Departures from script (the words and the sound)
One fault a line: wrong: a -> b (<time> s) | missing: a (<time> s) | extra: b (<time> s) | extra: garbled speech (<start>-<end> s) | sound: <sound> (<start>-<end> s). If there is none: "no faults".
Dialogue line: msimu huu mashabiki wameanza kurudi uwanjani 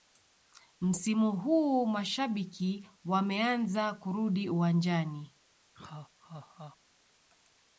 sound: laugh (5.7-6.8 s)